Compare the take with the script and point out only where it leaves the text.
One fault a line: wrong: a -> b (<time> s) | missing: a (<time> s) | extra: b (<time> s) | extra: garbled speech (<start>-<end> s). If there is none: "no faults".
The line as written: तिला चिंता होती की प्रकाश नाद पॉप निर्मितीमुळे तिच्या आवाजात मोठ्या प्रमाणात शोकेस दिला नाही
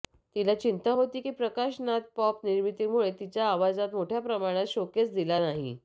no faults